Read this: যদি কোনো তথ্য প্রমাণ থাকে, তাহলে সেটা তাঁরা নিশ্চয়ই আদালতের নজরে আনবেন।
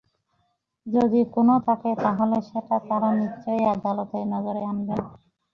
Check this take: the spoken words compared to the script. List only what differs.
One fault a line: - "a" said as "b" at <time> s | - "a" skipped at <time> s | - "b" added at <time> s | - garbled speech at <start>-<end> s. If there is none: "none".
- "তথ্য প্রমাণ" skipped at 1.5 s